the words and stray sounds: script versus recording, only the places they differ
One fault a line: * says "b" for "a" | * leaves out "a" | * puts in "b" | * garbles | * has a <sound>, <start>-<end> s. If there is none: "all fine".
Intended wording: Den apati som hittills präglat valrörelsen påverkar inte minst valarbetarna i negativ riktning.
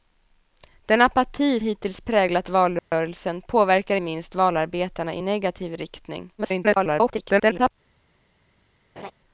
* leaves out "som"
* has a dropout, 2.8-2.9 s
* leaves out "inte"
* garbles
* has a laugh, 9.0-9.1 s